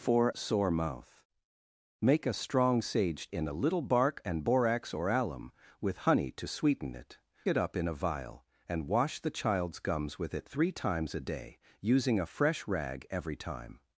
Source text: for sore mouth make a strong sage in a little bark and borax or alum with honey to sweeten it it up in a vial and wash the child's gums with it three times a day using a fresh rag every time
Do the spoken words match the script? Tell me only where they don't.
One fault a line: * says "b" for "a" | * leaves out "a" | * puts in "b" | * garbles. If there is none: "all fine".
all fine